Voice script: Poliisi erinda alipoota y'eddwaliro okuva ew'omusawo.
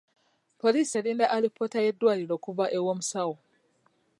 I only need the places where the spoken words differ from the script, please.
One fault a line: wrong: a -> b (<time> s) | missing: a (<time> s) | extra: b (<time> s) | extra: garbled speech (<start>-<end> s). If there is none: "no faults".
no faults